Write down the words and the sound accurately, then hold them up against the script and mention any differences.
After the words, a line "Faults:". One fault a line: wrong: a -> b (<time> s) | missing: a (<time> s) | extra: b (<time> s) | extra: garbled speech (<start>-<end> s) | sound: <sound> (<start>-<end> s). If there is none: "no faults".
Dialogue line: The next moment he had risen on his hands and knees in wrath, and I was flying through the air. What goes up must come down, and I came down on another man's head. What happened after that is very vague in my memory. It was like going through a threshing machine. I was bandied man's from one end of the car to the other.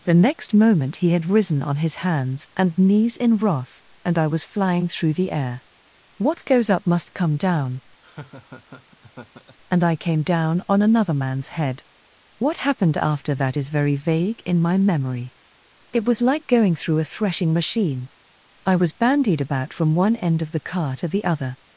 The next moment he had risen on his hands and knees in wrath, and I was flying through the air. What goes up must come down, and I came down on another man's head. What happened after that is very vague in my memory. It was like going through a threshing machine. I was bandied about from one end of the car to the other.
Faults:
sound: laugh (8.0-9.6 s)
wrong: man's -> about (19.4 s)